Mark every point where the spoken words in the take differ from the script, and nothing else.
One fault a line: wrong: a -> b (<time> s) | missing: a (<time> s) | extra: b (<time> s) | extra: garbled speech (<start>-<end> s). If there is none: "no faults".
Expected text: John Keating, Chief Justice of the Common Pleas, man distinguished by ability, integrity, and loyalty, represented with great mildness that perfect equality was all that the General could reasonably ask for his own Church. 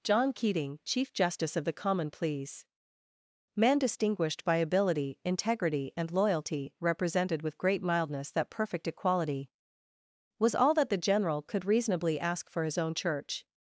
no faults